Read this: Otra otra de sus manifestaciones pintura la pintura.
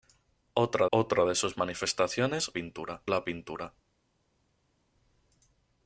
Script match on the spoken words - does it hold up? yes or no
yes